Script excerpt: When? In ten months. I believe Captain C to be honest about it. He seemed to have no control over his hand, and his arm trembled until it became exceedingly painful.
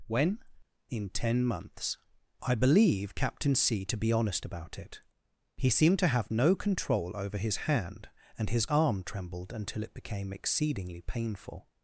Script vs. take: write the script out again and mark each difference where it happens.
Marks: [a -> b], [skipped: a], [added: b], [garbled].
When? In ten months. I believe Captain C to be honest about it. He seemed to have no control over his hand, and his arm trembled until it became exceedingly painful.